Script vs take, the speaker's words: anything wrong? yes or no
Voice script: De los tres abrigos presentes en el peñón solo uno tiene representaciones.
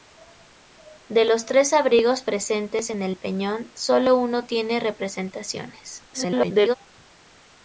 yes